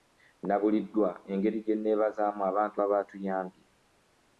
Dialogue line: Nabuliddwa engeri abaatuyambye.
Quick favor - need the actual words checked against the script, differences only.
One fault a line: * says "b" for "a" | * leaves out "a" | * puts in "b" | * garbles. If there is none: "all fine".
* puts in "gye nneebazaamu abantu"